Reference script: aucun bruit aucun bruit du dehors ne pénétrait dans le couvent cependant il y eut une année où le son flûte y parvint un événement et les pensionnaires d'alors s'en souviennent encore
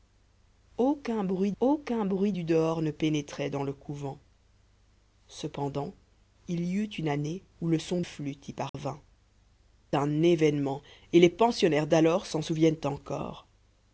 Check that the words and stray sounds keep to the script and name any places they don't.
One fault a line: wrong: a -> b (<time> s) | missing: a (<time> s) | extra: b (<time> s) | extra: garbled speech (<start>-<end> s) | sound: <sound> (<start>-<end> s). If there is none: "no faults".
sound: dropout (8.7-8.7 s)